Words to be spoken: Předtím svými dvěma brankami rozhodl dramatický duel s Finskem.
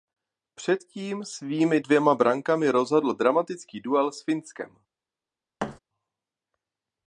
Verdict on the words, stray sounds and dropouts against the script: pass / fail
fail